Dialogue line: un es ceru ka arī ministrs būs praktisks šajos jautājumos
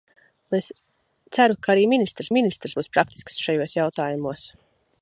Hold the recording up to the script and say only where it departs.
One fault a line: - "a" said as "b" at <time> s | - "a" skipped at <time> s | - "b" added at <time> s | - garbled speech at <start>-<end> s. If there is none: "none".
- "ministrs" added at 2.3 s